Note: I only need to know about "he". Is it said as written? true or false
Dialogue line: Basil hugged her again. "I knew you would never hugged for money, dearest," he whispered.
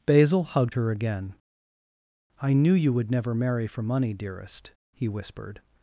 true